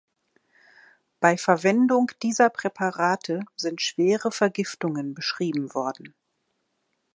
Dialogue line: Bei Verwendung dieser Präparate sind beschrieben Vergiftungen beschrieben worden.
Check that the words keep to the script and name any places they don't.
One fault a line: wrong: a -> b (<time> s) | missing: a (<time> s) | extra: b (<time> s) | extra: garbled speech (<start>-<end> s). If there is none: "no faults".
wrong: beschrieben -> schwere (3.8 s)